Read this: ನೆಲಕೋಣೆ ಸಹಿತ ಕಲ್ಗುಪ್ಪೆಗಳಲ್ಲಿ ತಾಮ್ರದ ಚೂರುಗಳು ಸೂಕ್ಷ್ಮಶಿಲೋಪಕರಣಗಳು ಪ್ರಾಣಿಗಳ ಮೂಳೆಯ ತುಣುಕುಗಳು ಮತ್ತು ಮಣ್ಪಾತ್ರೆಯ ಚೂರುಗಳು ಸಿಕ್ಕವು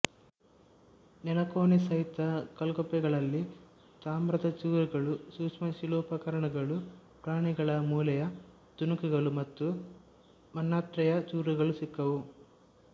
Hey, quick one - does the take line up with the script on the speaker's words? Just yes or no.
yes